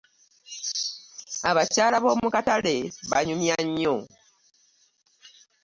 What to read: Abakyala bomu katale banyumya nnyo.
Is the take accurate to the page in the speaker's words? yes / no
yes